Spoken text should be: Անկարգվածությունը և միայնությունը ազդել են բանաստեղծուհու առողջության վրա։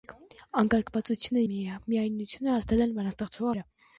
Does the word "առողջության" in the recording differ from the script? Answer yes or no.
yes